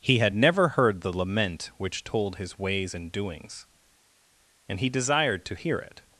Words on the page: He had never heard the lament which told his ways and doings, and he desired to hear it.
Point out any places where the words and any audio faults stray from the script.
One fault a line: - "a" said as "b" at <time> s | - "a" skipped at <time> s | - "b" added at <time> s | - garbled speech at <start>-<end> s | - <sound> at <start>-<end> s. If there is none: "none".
none